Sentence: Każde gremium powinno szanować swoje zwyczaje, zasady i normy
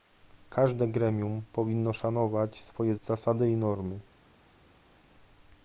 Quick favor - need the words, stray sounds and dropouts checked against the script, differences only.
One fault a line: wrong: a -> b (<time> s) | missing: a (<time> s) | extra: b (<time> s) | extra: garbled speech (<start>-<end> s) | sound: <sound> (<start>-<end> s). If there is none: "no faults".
missing: zwyczaje (3.0 s)